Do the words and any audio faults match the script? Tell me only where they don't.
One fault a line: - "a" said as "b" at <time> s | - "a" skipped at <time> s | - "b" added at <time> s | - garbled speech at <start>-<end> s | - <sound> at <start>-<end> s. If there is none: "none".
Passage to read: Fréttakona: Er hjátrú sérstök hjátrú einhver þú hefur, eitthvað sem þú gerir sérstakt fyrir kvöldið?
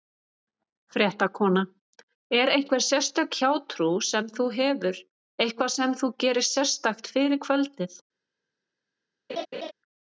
- "hjátrú" said as "einhver" at 2.5 s
- "einhver" said as "sem" at 4.1 s
- laugh at 9.3-9.7 s